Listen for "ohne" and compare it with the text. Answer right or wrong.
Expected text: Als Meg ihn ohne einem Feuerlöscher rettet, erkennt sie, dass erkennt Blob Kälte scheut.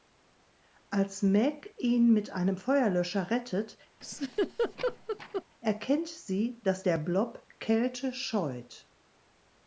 wrong